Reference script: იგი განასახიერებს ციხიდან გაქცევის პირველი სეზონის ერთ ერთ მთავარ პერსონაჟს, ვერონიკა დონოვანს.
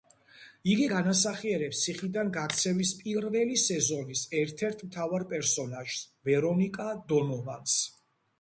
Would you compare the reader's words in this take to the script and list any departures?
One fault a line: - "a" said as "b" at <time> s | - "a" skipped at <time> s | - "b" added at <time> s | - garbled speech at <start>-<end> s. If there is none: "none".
none